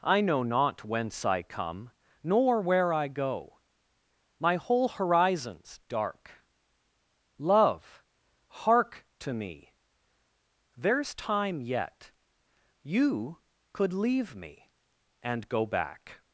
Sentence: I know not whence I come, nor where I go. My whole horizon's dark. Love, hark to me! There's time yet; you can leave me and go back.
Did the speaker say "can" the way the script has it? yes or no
no